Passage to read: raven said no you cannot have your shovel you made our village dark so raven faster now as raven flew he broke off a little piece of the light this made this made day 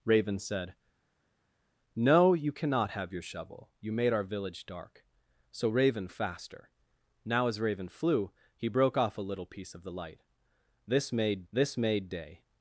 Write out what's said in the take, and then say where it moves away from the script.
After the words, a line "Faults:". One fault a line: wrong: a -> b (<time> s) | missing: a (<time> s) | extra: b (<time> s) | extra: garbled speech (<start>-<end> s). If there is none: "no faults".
raven said no you cannot have your shovel you made our village dark so raven faster now as raven flew he broke off a little piece of the light this made this made day
Faults:
no faults